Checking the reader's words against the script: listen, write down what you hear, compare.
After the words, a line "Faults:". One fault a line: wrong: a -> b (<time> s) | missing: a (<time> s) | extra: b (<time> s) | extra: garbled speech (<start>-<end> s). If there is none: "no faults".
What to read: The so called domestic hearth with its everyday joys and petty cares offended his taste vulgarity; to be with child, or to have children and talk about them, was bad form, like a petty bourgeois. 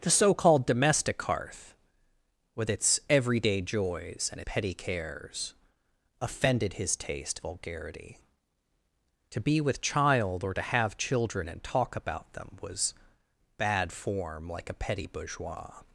The so called domestic hearth with its everyday joys and petty cares offended his taste vulgarity; to be with child, or to have children and talk about them, was bad form, like a petty bourgeois.
Faults:
no faults